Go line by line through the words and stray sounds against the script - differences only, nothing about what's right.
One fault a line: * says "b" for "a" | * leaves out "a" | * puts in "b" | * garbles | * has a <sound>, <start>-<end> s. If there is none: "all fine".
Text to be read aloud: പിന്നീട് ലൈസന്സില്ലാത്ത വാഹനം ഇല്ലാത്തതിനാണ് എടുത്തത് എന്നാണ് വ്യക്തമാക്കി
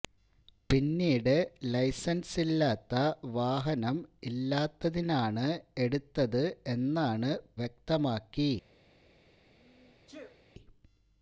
* has a sneeze, 9.6-10.4 s